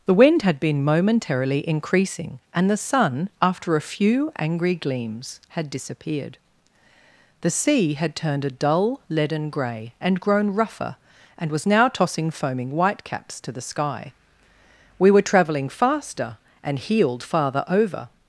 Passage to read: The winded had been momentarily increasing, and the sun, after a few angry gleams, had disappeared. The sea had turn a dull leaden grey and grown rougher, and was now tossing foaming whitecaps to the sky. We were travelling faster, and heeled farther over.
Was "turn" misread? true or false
true